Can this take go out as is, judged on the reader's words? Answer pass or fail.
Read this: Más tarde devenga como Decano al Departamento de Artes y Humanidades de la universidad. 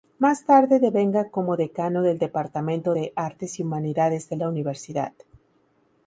fail